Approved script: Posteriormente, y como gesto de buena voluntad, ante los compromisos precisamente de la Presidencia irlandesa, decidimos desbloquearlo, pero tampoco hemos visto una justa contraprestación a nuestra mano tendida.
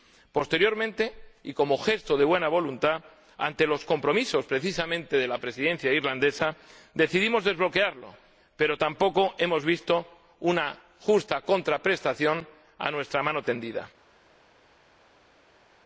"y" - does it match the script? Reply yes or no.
yes